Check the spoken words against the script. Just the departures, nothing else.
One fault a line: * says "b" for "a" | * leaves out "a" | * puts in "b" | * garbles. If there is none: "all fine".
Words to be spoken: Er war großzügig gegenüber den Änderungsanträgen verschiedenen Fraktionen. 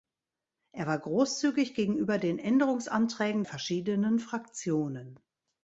all fine